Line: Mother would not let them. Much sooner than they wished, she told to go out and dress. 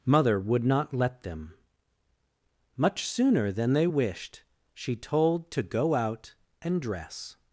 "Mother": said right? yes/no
yes